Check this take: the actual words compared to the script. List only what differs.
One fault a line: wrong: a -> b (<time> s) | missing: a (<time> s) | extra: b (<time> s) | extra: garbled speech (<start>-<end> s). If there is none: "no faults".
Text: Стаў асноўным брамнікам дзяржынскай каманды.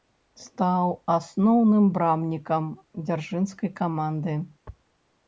no faults